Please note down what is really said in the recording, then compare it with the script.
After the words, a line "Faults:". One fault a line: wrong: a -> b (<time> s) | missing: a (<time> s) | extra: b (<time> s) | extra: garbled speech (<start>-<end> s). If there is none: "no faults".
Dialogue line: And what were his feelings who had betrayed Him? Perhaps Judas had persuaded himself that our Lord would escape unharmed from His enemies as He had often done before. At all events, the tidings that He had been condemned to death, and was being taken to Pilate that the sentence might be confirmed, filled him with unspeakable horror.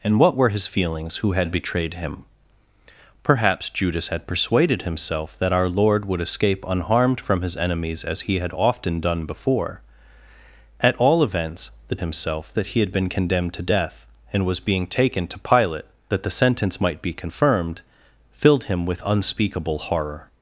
And what were his feelings who had betrayed Him? Perhaps Judas had persuaded himself that our Lord would escape unharmed from His enemies as He had often done before. At all events, the himself that He had been condemned to death, and was being taken to Pilate that the sentence might be confirmed, filled him with unspeakable horror.
Faults:
wrong: tidings -> himself (12.0 s)